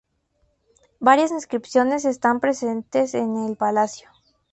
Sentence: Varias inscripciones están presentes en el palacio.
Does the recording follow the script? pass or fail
pass